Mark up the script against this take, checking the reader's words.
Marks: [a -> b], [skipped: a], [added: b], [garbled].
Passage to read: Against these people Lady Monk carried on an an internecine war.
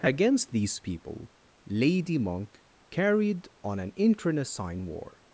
Against these people Lady Monk carried on an [skipped: an] internecine war.